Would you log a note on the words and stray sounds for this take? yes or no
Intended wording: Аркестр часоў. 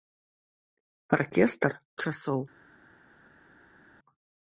no